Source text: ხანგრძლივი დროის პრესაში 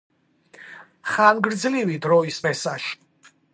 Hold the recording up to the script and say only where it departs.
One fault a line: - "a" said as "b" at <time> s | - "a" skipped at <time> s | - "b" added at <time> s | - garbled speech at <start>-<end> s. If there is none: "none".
none